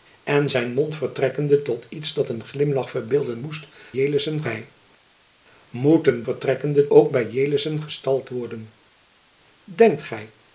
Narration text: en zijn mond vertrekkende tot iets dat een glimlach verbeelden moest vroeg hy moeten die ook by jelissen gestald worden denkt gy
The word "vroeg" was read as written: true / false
false